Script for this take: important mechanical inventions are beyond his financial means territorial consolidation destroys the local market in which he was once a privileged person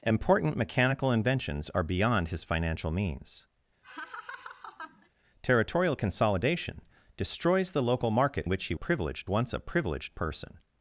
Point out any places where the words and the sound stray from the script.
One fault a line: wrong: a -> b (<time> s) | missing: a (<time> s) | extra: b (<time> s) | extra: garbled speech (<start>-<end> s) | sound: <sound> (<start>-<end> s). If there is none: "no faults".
sound: laugh (3.8-5.1 s)
missing: in (8.4 s)
wrong: was -> privileged (8.7 s)